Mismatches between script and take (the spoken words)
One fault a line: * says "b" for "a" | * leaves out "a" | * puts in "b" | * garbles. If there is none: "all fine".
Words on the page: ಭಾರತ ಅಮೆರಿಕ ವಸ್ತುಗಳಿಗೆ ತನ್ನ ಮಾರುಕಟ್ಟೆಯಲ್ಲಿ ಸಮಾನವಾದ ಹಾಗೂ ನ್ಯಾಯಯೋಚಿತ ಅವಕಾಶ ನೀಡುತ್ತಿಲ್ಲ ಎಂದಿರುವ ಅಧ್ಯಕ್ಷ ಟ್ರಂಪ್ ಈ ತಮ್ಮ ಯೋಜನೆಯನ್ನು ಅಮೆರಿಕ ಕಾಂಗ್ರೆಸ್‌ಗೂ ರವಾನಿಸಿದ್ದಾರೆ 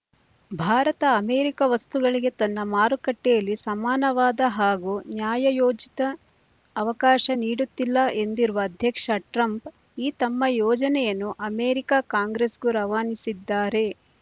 all fine